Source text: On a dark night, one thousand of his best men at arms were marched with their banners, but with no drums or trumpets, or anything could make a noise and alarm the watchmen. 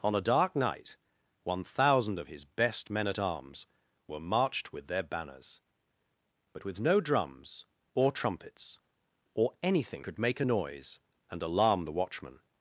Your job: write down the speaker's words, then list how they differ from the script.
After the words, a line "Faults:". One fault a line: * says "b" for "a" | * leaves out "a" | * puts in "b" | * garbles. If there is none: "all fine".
On a dark night, one thousand of his best men at arms were marched with their banners, but with no drums or trumpets, or anything could make a noise and alarm the watchmen.
Faults:
all fine